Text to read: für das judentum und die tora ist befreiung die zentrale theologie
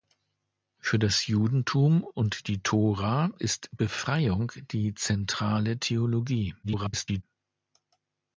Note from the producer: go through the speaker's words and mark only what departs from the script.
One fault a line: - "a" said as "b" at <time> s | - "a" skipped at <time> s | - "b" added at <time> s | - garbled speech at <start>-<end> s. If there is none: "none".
- garbled speech at 6.6-7.2 s